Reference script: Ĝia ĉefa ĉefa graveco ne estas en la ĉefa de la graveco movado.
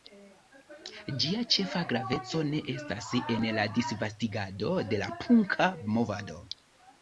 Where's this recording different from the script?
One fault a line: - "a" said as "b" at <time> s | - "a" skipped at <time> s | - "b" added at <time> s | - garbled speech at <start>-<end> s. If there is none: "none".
- "ĉefa" skipped at 1.8 s
- "ĉefa" said as "disvastigado" at 3.8 s
- "graveco" said as "punka" at 5.2 s